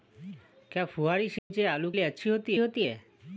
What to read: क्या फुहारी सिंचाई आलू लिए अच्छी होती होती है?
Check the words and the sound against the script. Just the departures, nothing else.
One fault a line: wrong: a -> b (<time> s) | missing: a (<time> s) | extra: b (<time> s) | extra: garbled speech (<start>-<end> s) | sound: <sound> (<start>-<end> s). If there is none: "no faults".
sound: dropout (1.4-1.5 s)